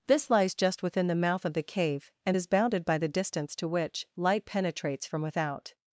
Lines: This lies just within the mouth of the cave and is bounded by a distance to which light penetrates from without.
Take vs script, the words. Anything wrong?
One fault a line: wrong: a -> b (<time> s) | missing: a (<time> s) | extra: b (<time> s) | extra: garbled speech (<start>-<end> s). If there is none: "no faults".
wrong: a -> the (3.0 s)